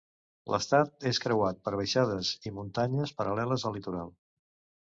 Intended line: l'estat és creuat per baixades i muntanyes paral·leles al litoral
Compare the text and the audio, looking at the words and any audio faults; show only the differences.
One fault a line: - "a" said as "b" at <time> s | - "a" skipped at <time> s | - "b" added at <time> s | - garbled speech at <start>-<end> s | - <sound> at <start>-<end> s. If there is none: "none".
none